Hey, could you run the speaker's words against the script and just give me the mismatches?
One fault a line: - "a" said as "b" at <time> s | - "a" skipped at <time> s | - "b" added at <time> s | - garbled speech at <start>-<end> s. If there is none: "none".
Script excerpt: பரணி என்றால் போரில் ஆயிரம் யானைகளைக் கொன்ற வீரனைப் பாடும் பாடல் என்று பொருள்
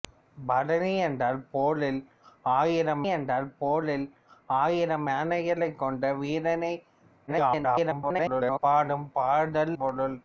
- "என்றால் போரில் ஆயிரம்" added at 3.1 s
- garbled speech at 7.3-8.6 s
- "என்று" skipped at 9.8 s